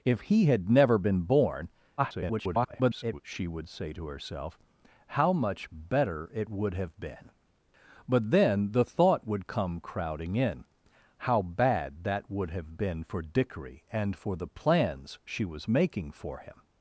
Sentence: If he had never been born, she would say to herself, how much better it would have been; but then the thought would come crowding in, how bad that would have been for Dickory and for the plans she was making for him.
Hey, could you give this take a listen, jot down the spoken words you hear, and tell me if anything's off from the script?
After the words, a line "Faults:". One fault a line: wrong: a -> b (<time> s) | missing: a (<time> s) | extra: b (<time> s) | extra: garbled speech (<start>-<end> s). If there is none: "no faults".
If he had never been born, [garbled] she would say to herself, how much better it would have been; but then the thought would come crowding in, how bad that would have been for Dickory and for the plans she was making for him.
Faults:
extra: garbled speech (2.0-3.2 s)